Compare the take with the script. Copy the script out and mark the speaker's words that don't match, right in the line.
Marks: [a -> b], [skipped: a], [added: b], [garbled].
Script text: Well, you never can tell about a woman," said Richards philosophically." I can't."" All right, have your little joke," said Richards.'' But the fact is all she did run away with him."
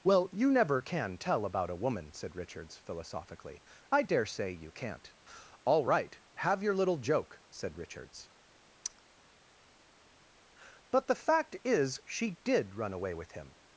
Well, you never can tell about a woman," said Richards philosophically." I [added: dare say you] can't."" All right, have your little joke," said Richards.'' But the fact is [skipped: all] she did run away with him."